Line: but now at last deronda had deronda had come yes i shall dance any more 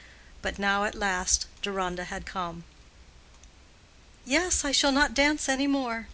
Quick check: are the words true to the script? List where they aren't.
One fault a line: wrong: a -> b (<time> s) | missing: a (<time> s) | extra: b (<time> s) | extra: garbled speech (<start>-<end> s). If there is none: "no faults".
missing: deronda had (2.3 s)
extra: not (4.9 s)